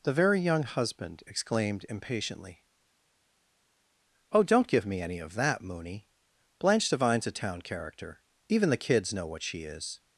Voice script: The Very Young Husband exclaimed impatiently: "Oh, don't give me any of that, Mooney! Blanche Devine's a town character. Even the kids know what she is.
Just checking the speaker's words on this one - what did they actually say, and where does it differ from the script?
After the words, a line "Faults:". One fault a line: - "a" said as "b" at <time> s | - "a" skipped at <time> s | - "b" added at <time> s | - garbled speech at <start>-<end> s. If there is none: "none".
The Very Young Husband exclaimed impatiently: "Oh, don't give me any of that, Mooney! Blanche Devine's a town character. Even the kids know what she is.
Faults:
none